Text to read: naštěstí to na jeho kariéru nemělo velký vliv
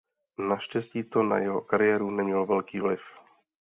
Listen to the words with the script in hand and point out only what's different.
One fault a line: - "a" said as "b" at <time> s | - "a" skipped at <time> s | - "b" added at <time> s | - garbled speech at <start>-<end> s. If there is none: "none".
none